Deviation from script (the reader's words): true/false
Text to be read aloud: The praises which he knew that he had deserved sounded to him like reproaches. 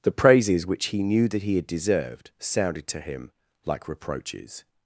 false